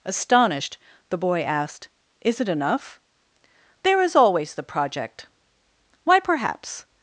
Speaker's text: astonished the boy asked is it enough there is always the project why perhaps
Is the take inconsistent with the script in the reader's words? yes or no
no